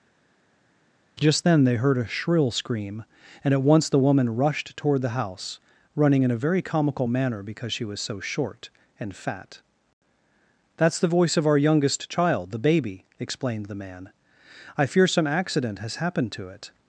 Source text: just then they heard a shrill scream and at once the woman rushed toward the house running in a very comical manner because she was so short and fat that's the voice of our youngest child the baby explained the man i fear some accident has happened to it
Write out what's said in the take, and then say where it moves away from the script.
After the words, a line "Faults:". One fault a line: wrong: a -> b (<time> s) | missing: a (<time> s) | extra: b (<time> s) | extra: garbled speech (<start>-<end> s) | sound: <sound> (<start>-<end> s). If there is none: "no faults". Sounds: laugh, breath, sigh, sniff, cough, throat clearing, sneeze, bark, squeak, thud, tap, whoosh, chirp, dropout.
just then they heard a shrill scream and at once the woman rushed toward the house running in a very comical manner because she was so short and fat that's the voice of our youngest child the baby explained the man i fear some accident has happened to it
Faults:
no faults